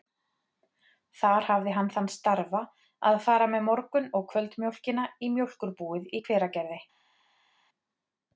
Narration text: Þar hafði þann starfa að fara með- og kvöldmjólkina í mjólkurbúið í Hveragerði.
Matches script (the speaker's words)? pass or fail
fail